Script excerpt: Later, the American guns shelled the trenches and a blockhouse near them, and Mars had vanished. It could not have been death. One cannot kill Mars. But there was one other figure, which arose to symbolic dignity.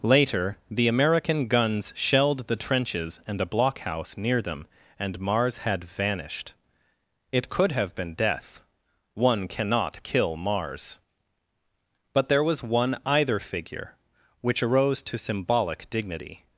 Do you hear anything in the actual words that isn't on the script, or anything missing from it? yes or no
yes